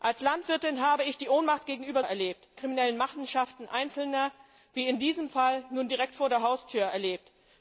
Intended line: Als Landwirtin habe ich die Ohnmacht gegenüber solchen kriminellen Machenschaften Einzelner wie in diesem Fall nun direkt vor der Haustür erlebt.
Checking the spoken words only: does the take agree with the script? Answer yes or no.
no